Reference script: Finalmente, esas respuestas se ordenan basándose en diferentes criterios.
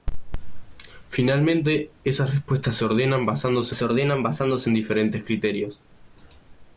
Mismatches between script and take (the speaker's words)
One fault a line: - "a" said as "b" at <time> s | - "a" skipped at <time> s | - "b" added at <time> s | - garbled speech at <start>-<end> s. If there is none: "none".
- "se ordenan basándose" added at 3.7 s